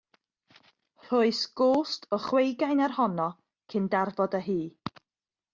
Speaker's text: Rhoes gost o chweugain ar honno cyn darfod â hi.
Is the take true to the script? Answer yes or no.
yes